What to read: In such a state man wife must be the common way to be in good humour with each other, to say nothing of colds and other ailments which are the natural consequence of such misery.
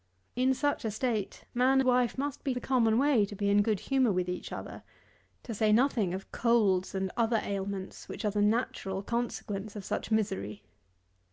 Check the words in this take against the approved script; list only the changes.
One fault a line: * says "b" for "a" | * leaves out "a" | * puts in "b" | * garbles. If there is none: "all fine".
all fine